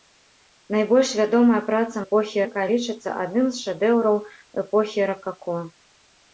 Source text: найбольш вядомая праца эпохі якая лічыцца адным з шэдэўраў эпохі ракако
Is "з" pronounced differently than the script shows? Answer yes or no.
no